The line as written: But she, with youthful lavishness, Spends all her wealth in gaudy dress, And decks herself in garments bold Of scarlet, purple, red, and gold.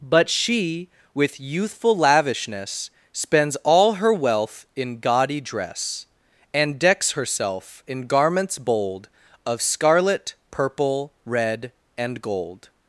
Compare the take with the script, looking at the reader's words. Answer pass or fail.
pass